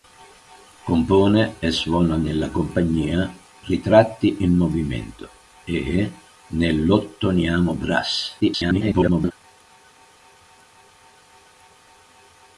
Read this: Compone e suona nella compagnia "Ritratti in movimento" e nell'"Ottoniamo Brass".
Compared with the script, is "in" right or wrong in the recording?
right